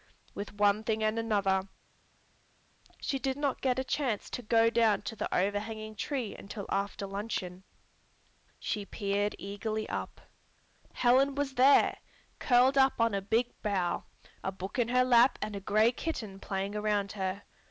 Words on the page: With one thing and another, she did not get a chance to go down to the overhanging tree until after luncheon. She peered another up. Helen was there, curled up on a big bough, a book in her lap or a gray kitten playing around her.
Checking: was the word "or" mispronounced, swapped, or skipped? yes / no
yes